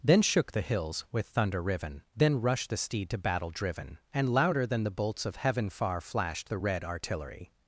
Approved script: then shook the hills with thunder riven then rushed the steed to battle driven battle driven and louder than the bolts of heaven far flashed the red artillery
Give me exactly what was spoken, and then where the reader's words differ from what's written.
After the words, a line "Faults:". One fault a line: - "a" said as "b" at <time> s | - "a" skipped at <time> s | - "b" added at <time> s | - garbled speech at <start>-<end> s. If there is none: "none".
then shook the hills with thunder riven then rushed the steed to battle driven and louder than the bolts of heaven far flashed the red artillery
Faults:
- "battle driven" skipped at 4.0 s